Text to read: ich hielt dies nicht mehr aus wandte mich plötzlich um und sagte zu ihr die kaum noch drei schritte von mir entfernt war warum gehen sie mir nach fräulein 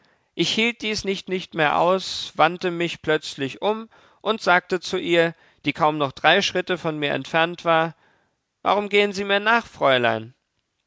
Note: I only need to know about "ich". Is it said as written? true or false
true